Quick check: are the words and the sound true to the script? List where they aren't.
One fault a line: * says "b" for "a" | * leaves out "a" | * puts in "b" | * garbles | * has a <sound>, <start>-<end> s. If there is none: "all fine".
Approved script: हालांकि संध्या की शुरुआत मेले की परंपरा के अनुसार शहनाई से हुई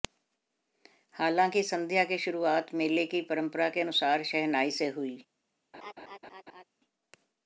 * has a laugh, 5.7-6.6 s